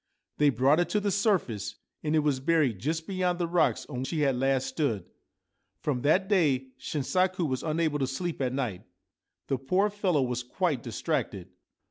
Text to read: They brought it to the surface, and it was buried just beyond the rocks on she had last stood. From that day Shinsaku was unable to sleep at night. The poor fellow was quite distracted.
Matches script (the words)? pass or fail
pass